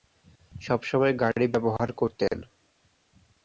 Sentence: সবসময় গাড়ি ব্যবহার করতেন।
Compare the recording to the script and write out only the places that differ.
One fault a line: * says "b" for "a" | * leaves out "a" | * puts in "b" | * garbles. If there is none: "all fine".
all fine